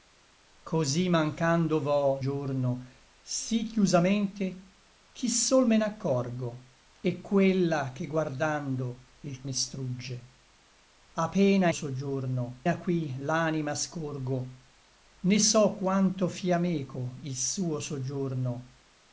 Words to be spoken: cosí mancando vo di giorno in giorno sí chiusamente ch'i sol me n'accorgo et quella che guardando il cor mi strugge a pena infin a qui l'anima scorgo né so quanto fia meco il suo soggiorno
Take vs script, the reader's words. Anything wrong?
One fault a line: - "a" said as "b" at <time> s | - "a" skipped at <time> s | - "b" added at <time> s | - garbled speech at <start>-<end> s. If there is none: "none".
- "di" skipped at 2.2 s
- "in giorno" skipped at 2.9 s
- "cor" skipped at 9.4 s
- "infin" said as "soggiorno" at 11.7 s